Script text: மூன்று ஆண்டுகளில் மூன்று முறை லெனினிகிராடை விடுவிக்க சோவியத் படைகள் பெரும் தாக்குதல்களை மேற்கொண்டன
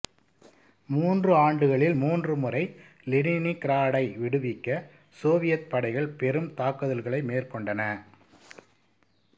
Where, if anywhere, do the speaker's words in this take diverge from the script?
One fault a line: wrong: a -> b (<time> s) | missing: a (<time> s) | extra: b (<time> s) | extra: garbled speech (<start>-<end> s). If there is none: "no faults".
no faults